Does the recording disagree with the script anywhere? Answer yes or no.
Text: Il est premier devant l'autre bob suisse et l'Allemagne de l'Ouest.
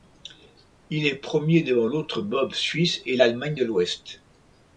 no